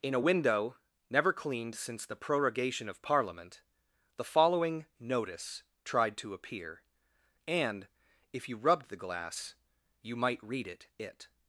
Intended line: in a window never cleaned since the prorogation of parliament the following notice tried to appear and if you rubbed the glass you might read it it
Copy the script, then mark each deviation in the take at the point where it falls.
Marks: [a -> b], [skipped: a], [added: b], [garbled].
in a window never cleaned since the prorogation of parliament the following notice tried to appear and if you rubbed the glass you might read it it